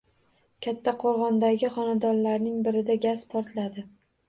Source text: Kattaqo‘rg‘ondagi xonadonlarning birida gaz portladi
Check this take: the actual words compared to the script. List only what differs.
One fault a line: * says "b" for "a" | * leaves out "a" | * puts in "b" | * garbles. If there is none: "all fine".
all fine